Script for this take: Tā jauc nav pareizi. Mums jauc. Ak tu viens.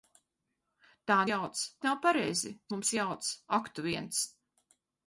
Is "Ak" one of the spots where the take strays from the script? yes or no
no